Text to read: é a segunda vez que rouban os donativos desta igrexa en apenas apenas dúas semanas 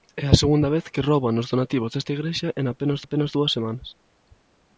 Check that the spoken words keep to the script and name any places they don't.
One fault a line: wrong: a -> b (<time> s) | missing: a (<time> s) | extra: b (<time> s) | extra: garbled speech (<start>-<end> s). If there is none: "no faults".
no faults